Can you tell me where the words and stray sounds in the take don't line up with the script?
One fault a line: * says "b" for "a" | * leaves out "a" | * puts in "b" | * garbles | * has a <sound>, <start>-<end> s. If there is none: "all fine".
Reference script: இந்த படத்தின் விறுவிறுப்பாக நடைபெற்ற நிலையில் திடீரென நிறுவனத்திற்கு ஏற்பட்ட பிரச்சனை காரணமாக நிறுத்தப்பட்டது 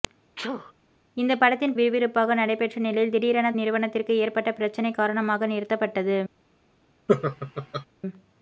* has a sneeze, 0.4-0.7 s
* has a laugh, 7.1-7.9 s